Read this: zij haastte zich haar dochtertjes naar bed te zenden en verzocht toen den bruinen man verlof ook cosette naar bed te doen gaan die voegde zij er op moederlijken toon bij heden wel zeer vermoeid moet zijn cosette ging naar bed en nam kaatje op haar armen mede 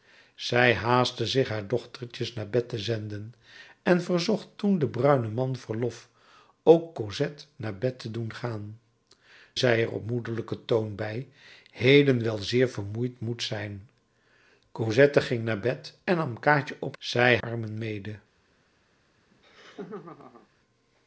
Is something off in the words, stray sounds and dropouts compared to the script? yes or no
yes